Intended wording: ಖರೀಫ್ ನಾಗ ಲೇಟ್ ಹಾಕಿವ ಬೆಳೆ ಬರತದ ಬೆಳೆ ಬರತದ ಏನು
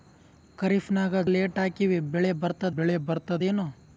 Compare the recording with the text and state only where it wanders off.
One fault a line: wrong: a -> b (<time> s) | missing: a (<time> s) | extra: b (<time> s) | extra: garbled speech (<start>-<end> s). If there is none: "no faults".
no faults